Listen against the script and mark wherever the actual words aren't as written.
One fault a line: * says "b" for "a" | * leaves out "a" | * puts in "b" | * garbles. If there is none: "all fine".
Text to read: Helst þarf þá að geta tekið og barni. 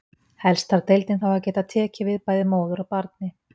* puts in "deildin"
* puts in "við bæði móður"